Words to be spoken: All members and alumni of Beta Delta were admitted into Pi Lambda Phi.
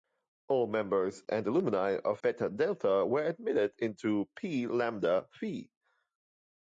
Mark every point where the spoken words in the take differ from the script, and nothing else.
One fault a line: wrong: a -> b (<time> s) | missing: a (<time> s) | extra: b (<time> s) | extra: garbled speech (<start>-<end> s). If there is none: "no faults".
no faults